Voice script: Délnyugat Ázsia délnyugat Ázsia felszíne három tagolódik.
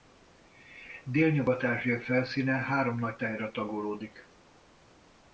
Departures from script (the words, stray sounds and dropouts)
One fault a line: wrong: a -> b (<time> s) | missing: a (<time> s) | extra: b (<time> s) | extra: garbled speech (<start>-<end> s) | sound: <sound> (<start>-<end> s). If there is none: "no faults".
wrong: délnyugat Ázsia felszíne három -> felszíne három nagy tájra (2.0 s)